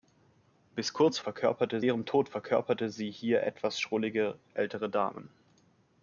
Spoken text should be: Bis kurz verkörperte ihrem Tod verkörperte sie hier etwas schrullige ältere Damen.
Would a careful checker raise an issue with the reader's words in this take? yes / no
no